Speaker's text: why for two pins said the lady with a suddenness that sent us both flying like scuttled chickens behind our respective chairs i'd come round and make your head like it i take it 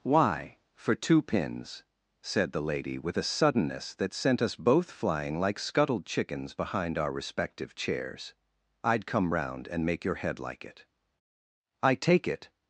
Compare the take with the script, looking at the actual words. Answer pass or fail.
pass